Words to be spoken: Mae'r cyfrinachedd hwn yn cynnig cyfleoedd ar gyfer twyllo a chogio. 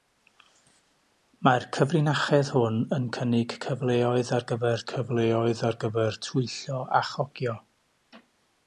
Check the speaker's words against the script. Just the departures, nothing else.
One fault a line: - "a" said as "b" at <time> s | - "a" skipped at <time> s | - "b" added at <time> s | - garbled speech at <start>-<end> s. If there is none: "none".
- "cyfleoedd ar gyfer" added at 4.9 s